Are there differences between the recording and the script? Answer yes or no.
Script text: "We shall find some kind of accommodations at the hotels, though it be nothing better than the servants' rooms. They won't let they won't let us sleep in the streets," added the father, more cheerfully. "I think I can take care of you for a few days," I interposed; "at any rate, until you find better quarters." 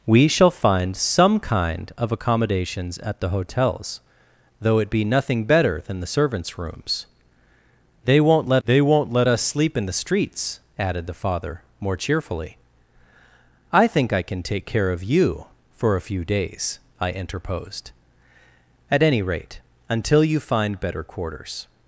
no